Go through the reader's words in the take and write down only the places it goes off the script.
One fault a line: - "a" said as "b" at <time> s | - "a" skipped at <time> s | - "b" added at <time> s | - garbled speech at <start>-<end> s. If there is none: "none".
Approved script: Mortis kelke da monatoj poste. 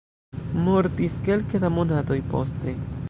none